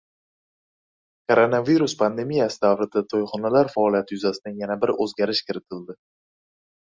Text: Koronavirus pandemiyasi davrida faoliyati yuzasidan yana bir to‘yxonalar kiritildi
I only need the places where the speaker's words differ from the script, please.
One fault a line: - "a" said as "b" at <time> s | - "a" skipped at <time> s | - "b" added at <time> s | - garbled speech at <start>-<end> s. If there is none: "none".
- "to‘yxonalar" added at 3.1 s
- "to‘yxonalar" said as "o‘zgarish" at 5.1 s